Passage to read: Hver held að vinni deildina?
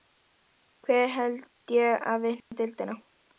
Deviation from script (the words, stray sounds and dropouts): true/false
true